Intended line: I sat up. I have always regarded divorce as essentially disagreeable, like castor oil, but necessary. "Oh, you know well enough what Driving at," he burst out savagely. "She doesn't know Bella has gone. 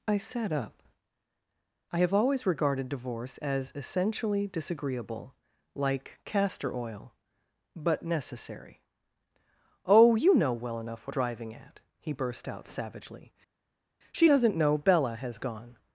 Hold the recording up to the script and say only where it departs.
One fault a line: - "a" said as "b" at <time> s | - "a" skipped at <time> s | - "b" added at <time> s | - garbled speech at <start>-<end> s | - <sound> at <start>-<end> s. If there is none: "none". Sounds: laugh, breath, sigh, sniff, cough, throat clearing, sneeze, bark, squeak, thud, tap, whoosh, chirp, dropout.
none